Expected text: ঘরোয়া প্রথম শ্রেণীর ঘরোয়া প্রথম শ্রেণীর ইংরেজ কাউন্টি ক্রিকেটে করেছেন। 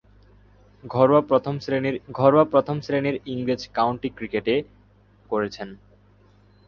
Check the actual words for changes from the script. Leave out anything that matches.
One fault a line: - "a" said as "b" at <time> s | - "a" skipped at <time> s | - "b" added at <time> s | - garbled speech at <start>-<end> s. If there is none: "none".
none